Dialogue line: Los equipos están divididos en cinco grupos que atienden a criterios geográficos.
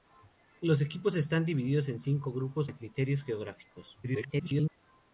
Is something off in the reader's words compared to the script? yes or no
yes